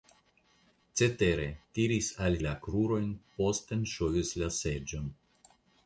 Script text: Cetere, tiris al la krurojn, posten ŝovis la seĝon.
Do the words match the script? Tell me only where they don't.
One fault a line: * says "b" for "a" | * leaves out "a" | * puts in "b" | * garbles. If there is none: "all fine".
all fine